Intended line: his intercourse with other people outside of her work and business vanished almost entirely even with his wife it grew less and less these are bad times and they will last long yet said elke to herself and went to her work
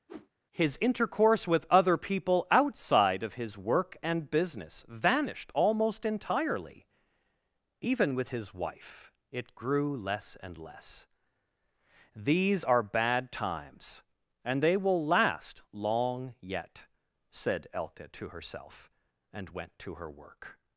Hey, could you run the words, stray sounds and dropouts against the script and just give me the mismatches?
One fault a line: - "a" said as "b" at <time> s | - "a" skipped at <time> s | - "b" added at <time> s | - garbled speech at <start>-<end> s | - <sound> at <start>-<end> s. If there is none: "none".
- whoosh at 0.1-0.3 s
- "her" said as "his" at 3.3 s